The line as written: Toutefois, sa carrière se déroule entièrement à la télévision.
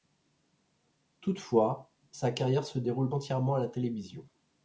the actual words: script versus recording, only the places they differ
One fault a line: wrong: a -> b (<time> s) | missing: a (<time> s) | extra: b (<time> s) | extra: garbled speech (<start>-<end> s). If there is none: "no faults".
no faults